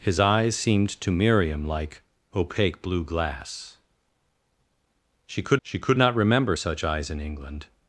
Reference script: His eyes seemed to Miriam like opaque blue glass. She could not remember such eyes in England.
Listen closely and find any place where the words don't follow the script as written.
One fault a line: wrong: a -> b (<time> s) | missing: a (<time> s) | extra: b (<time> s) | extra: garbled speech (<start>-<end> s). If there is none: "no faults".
extra: she could (5.6 s)